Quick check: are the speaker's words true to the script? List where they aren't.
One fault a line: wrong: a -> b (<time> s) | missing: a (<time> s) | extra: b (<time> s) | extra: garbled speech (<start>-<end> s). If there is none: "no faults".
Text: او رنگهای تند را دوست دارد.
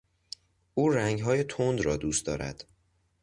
no faults